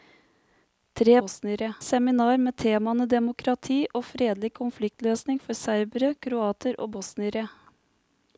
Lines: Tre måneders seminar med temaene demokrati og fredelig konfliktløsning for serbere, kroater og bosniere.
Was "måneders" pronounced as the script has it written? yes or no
no